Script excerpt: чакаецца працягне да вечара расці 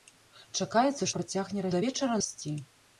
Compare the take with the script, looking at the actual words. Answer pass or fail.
pass